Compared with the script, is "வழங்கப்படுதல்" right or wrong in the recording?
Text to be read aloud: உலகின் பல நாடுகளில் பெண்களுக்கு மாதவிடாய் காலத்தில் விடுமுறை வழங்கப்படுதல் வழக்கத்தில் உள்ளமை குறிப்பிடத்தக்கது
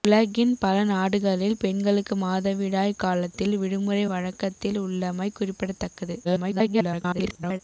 wrong